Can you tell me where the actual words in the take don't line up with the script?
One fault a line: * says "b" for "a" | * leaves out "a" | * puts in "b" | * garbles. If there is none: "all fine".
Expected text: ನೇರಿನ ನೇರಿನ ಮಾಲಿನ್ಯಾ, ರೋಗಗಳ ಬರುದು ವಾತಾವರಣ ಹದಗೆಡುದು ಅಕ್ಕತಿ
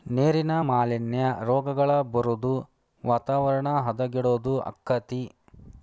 * leaves out "ನೇರಿನ"